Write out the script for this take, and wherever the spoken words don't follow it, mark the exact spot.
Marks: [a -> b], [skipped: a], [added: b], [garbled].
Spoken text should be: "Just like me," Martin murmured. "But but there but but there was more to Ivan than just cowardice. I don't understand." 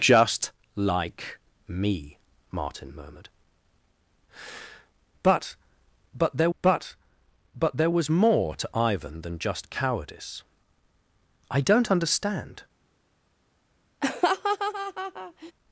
"Just like me," Martin murmured. "But but there but but there was more to Ivan than just cowardice. I don't understand."